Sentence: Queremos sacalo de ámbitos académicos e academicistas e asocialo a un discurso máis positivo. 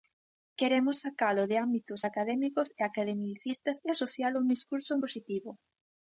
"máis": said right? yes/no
no